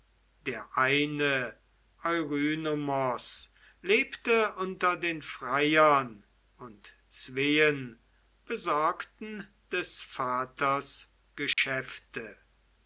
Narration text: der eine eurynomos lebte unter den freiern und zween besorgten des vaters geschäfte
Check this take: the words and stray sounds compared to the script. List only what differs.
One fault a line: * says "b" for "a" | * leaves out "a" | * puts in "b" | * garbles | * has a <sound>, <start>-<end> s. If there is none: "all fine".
* has a dropout, 11.5-11.6 s